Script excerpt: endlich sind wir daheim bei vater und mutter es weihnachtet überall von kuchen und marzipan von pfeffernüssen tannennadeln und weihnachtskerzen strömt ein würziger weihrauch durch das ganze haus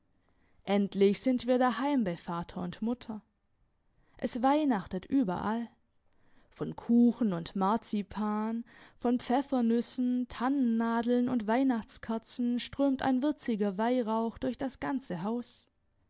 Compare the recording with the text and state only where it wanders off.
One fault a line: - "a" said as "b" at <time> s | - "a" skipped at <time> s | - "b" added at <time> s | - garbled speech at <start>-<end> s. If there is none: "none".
none